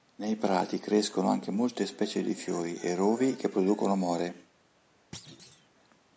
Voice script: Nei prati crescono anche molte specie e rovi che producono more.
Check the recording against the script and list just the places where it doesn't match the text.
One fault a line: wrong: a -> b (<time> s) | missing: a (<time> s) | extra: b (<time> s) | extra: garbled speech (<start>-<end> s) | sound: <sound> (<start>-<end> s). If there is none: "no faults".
extra: di fiori (2.2 s)
sound: thud (5.1-5.7 s)